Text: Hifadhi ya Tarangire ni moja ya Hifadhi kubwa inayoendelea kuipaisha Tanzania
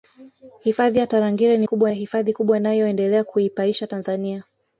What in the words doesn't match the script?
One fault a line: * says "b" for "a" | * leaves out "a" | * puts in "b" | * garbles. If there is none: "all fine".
* says "kubwa" for "moja"